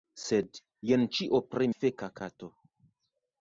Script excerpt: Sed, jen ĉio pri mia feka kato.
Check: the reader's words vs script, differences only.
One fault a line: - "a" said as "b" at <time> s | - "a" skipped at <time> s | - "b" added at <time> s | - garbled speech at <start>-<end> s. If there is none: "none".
- "mia" skipped at 1.7 s